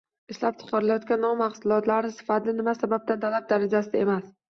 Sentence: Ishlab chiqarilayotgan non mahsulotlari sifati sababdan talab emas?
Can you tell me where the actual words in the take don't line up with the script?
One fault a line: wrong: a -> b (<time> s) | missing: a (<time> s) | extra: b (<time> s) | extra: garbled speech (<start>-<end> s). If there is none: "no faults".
extra: nima (2.6 s)
extra: darajasida (3.5 s)